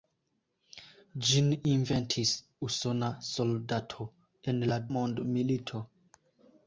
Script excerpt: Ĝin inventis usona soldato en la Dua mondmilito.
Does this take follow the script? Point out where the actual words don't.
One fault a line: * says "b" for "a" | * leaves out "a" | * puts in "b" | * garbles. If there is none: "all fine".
* leaves out "Dua"